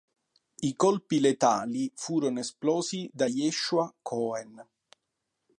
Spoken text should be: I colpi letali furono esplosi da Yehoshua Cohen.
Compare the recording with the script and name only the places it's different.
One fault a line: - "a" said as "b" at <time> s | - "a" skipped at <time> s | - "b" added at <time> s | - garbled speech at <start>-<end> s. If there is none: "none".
none